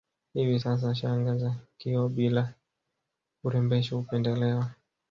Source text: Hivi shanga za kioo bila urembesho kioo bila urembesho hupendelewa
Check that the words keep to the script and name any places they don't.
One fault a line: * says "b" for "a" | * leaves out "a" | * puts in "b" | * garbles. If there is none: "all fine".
* puts in "sasa"
* leaves out "kioo bila urembesho"